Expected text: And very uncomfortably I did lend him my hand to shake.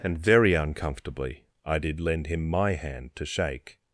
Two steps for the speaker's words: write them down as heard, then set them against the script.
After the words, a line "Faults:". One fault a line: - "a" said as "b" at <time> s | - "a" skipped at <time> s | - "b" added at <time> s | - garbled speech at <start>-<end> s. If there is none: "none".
And very uncomfortably I did lend him my hand to shake.
Faults:
none